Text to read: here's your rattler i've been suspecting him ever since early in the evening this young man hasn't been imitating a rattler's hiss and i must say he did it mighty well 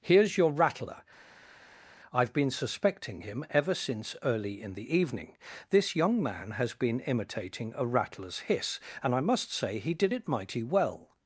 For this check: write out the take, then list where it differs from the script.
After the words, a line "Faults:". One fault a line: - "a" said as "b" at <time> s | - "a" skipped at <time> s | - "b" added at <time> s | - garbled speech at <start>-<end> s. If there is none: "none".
here's your rattler i've been suspecting him ever since early in the evening this young man has been imitating a rattler's hiss and i must say he did it mighty well
Faults:
- "hasn't" said as "has" at 6.5 s